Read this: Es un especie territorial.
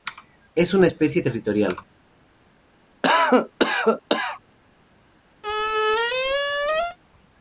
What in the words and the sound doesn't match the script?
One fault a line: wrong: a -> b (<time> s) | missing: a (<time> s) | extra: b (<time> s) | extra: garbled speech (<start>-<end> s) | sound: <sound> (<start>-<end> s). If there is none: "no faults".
wrong: un -> una (0.7 s)
sound: cough (3.0-4.4 s)
sound: squeak (5.4-7.0 s)